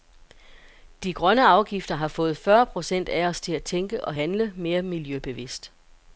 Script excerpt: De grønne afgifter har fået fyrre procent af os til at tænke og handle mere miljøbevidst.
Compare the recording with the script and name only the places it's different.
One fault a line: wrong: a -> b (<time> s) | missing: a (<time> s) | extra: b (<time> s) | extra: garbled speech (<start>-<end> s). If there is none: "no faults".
no faults